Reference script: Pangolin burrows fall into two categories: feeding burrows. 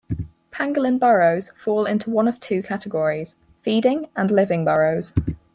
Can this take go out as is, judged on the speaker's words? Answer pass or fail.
fail